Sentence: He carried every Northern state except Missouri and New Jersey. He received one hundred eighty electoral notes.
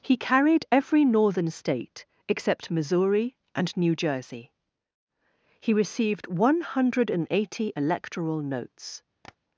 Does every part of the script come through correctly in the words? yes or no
yes